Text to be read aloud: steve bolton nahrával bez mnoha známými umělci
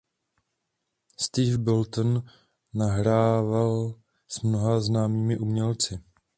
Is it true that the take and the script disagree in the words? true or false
true